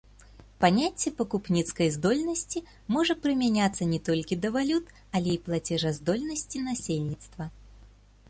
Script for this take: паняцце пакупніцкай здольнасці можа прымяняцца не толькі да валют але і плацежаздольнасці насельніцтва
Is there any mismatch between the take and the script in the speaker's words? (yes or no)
no